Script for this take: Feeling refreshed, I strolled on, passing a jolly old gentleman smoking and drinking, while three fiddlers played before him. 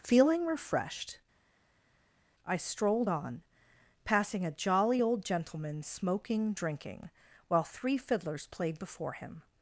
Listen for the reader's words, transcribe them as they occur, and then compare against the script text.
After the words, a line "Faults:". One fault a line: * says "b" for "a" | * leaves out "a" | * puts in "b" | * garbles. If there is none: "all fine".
Feeling refreshed, I strolled on, passing a jolly old gentleman smoking drinking, while three fiddlers played before him.
Faults:
* leaves out "and"